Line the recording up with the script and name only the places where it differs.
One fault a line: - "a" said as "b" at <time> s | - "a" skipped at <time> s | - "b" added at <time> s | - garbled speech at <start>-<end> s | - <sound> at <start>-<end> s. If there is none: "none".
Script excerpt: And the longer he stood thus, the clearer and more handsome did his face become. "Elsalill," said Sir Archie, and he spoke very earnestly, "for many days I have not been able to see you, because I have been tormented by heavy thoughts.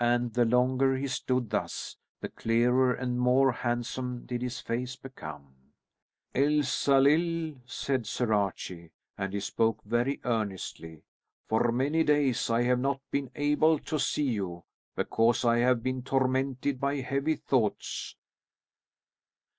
none